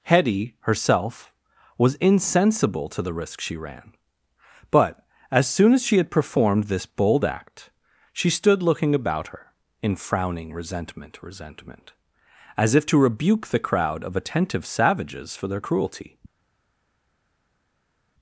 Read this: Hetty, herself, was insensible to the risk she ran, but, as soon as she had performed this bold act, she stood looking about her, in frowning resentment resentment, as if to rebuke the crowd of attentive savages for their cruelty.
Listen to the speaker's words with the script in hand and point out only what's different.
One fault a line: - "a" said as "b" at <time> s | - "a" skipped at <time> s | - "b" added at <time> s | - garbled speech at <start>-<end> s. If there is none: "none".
none